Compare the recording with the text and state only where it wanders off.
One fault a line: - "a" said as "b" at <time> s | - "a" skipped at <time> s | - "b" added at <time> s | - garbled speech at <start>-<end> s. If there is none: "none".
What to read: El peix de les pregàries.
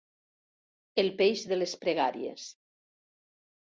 none